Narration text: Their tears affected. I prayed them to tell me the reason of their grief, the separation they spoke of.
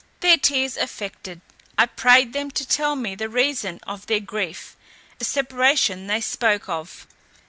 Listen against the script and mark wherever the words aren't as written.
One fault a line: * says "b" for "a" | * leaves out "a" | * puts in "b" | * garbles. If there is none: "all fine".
all fine